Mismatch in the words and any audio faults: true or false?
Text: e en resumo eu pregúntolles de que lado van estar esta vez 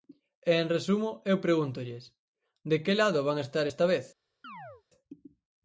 true